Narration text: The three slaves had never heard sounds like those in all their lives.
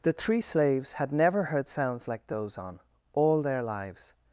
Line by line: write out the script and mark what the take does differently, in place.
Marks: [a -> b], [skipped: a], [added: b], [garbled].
The three slaves had never heard sounds like those [in -> on] all their lives.